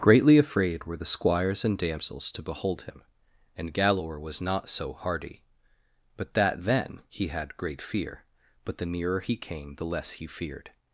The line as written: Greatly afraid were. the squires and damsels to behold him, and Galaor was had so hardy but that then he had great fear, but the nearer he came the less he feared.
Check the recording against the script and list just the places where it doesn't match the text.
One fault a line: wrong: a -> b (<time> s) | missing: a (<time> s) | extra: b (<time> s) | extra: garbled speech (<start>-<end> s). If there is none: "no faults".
wrong: had -> not (4.4 s)